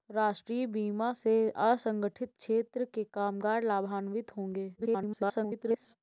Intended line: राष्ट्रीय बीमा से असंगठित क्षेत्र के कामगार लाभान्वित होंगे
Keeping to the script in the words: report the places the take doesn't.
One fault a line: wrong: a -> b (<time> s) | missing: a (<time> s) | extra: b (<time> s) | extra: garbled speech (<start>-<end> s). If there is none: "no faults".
extra: garbled speech (4.8-6.0 s)